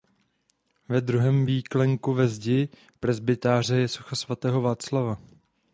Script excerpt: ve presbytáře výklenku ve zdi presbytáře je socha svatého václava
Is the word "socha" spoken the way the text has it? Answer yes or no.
yes